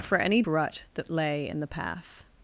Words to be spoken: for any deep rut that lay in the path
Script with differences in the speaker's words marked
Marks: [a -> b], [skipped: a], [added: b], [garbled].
for any [skipped: deep] rut that lay in the path